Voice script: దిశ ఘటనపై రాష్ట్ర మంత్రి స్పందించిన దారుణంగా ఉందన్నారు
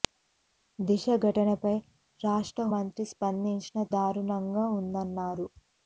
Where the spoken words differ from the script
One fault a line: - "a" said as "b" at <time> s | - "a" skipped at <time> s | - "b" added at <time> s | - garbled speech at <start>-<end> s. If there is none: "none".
none